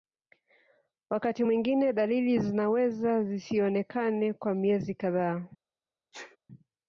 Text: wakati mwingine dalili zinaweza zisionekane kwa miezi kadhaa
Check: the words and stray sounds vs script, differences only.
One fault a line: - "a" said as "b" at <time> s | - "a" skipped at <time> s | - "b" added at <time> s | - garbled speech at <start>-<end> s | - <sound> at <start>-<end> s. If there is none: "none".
- sneeze at 6.1-6.4 s